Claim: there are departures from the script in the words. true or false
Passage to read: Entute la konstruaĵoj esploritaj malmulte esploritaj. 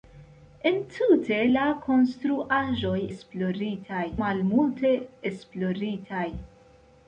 false